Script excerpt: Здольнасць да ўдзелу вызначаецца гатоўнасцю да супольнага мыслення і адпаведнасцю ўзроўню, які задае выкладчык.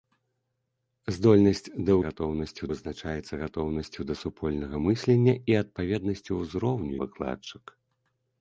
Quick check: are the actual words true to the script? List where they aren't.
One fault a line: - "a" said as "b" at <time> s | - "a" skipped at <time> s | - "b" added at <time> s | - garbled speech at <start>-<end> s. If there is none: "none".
- "ўдзелу" said as "гатоўнасцю" at 2.1 s
- "які задае" skipped at 6.9 s